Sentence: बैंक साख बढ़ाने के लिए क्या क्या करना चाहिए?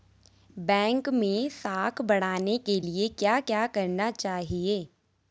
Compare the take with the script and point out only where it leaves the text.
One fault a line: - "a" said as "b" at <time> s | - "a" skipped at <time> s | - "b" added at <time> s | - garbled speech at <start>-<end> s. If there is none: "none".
- "मैं" added at 1.1 s